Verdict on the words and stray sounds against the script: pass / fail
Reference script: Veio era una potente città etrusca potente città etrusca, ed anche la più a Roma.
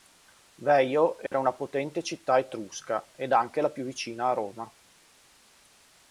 fail